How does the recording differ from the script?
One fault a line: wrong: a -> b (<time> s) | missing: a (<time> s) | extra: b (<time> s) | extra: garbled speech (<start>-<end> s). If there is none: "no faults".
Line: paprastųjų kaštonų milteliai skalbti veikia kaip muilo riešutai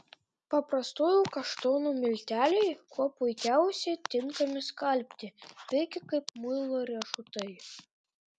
extra: kuo puikiausiai tinkami (2.9 s)